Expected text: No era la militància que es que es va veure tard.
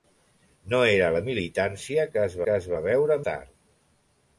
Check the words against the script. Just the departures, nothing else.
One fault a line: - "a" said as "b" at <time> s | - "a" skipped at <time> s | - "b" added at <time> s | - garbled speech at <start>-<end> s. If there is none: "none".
none